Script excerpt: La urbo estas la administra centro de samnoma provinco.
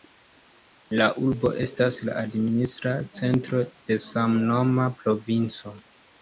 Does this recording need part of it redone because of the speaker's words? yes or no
no